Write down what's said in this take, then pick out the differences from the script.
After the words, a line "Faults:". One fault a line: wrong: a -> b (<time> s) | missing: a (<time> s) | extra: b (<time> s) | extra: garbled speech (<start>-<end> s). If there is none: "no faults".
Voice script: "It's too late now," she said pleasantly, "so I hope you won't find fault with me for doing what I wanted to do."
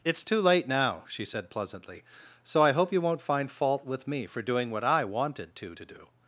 "It's too late now," she said pleasantly, "so I hope you won't find fault with me for doing what I wanted to to do."
Faults:
extra: to (5.7 s)